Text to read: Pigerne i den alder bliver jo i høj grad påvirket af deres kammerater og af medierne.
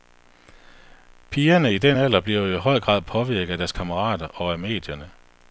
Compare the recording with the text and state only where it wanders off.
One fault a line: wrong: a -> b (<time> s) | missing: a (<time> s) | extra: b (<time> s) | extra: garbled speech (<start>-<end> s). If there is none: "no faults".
no faults